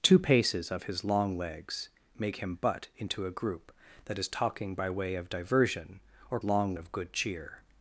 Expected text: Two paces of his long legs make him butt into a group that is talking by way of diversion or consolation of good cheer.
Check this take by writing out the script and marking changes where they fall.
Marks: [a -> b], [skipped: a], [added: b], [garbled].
Two paces of his long legs make him butt into a group that is talking by way of diversion or [consolation -> long] of good cheer.